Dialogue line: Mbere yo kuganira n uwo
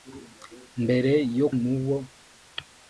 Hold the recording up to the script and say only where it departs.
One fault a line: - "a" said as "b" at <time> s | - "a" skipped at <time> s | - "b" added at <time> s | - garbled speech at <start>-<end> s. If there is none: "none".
- "kuganira" skipped at 1.5 s